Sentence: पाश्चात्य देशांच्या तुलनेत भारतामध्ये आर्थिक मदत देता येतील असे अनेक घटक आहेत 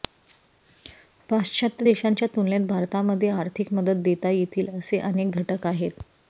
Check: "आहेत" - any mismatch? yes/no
no